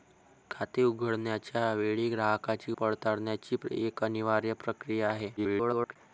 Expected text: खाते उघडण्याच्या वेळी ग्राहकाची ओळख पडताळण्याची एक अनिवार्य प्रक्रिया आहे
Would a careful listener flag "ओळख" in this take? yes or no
yes